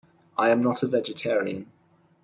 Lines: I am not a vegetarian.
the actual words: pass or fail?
pass